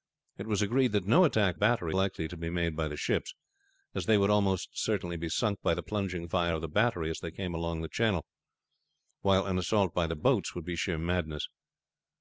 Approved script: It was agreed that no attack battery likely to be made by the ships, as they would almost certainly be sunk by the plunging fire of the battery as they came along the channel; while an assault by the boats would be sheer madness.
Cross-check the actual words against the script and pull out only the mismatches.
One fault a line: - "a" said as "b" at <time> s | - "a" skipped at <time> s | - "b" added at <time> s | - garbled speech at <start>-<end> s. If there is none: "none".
none